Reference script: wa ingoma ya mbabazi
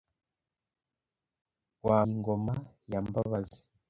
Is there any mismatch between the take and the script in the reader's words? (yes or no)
no